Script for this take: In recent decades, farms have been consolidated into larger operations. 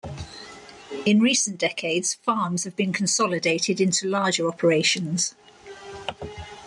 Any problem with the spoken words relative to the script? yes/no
no